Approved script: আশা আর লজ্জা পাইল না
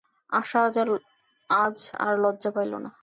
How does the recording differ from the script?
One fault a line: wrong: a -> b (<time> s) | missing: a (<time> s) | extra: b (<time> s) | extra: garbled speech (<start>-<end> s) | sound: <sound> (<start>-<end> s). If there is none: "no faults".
extra: আজ (1.5 s)